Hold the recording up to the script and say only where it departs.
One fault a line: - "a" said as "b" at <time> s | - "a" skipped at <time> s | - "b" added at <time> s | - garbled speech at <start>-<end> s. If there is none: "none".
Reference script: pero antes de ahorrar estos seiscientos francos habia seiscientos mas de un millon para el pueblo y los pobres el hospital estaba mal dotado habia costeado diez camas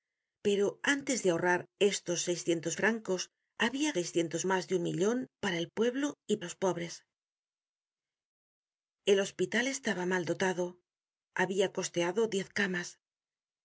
none